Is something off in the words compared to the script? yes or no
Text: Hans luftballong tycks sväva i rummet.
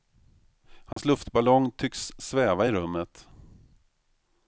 no